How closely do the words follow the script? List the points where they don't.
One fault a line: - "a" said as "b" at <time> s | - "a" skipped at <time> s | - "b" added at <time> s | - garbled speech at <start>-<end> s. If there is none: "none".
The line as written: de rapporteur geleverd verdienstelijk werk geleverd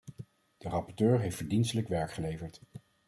- "geleverd" said as "heeft" at 1.2 s